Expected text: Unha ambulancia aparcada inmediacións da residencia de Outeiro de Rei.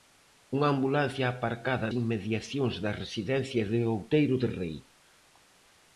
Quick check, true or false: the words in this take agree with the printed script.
true